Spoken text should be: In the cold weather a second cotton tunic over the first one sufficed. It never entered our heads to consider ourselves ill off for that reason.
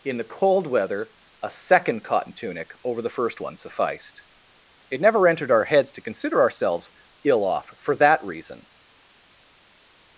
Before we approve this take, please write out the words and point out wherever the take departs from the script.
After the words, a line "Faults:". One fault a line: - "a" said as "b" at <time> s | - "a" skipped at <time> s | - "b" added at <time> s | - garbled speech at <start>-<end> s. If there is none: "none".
In the cold weather a second cotton tunic over the first one sufficed. It never entered our heads to consider ourselves ill off for that reason.
Faults:
none